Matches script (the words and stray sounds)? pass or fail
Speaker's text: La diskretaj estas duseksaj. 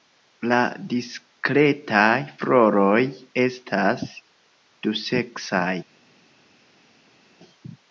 fail